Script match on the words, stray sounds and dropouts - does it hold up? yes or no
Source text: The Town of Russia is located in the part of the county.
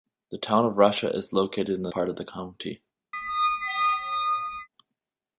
no